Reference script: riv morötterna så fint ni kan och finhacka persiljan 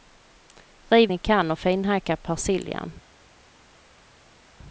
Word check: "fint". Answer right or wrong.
wrong